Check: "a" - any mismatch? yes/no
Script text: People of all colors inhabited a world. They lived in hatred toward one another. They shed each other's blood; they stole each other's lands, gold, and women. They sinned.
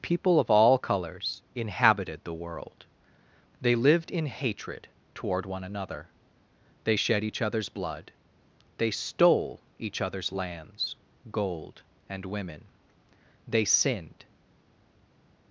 yes